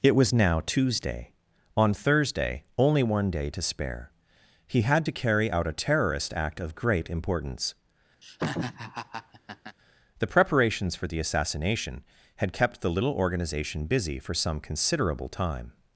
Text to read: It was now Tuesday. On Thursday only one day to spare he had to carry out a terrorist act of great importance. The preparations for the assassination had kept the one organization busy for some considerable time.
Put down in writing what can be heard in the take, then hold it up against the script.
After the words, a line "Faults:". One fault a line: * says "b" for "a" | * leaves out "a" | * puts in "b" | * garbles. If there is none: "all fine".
It was now Tuesday. On Thursday only one day to spare he had to carry out a terrorist act of great importance. The preparations for the assassination had kept the little organization busy for some considerable time.
Faults:
* says "little" for "one"